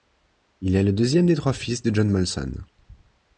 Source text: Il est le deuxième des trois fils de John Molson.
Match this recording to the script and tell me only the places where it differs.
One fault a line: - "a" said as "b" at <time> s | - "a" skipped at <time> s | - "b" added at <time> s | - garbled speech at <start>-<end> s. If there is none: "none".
none